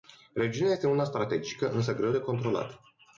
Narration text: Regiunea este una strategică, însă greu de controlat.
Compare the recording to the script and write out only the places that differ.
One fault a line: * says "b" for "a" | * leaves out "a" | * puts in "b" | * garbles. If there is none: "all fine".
all fine